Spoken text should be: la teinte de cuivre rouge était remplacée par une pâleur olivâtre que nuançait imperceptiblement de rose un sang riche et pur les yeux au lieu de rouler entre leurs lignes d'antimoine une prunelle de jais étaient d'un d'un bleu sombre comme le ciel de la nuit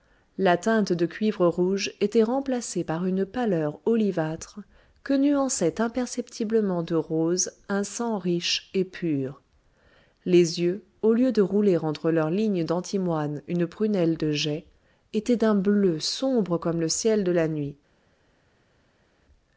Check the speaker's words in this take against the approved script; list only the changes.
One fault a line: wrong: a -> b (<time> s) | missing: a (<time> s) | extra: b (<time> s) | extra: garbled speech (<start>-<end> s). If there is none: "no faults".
missing: d'un (15.6 s)